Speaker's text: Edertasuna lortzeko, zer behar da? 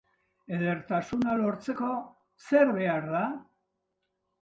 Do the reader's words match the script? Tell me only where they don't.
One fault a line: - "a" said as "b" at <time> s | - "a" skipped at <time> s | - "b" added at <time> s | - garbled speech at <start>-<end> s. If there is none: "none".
none